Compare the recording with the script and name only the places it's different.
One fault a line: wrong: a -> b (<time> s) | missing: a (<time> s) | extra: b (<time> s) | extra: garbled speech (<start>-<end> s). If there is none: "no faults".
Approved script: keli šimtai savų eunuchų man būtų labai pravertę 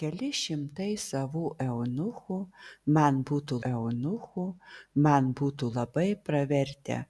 extra: eunuchų man būtų (3.7 s)